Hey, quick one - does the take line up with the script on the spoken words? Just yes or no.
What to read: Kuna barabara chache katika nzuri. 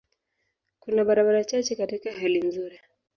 no